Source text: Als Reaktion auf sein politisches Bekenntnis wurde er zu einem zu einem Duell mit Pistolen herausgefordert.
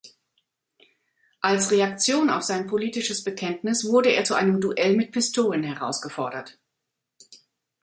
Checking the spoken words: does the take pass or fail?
fail